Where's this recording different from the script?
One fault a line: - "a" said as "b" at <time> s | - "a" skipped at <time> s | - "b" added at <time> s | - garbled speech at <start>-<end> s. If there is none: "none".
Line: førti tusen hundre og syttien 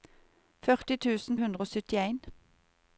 none